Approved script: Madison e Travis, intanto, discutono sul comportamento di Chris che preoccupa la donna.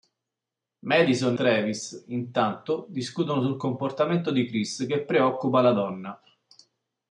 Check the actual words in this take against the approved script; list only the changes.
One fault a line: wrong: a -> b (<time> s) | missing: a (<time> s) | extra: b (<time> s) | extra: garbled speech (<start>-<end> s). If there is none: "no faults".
missing: e (1.4 s)